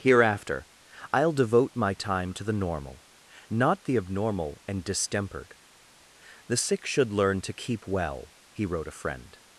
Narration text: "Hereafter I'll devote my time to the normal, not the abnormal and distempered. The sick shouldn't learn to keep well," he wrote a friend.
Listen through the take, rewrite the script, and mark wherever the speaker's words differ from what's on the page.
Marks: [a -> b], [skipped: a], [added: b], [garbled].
"Hereafter I'll devote my time to the normal, not the abnormal and distempered. The sick [shouldn't -> should] learn to keep well," he wrote a friend.